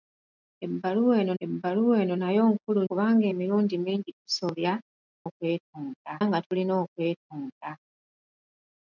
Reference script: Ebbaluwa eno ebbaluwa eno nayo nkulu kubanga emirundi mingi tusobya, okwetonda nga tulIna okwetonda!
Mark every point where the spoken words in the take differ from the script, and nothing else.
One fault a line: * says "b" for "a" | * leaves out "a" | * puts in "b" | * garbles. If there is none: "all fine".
all fine